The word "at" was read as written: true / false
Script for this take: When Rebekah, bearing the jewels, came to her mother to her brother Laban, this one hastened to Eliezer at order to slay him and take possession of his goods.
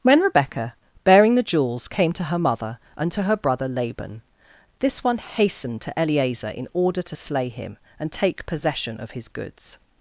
false